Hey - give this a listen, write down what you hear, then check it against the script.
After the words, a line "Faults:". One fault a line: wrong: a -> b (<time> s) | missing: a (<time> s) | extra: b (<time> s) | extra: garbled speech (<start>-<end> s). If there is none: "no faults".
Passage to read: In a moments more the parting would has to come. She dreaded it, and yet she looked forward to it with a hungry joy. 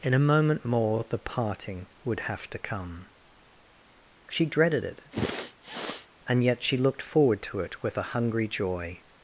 In a moment more the parting would have to come. She dreaded it, and yet she looked forward to it with a hungry joy.
Faults:
wrong: moments -> moment (0.3 s)
wrong: has -> have (2.2 s)